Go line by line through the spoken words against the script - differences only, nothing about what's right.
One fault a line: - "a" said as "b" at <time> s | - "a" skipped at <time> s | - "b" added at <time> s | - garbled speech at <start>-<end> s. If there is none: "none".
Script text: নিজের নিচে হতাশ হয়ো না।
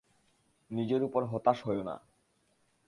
- "নিচে" said as "উপর" at 1.0 s